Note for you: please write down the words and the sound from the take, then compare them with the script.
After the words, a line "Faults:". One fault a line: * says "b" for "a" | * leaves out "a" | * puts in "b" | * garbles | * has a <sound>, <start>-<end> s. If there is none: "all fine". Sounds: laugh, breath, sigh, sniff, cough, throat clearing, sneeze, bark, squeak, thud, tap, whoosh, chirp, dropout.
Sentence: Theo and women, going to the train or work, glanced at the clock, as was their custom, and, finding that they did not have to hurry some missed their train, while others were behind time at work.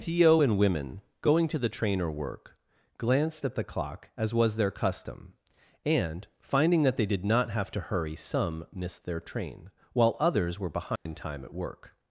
Theo and women, going to the train or work, glanced at the clock, as was their custom, and, finding that they did not have to hurry some missed their train, while others were behind time at work.
Faults:
* has a dropout, 11.0-11.1 s